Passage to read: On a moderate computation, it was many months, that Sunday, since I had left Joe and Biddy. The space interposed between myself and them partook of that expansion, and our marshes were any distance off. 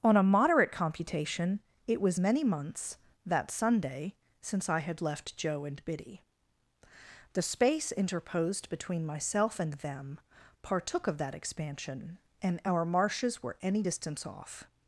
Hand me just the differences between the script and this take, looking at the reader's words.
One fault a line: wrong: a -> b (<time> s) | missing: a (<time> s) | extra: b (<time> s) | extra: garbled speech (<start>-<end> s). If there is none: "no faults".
no faults